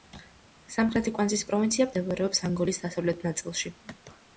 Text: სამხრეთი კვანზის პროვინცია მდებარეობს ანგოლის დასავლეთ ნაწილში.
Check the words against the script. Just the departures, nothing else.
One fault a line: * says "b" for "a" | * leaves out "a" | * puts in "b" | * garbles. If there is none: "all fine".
all fine